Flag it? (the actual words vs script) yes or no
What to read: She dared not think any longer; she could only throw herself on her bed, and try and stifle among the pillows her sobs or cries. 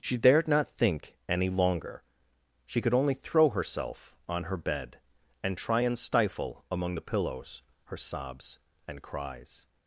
yes